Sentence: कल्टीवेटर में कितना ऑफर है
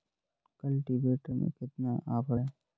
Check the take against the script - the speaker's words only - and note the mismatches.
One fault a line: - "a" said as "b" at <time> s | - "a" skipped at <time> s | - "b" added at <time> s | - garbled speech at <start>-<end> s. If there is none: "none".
none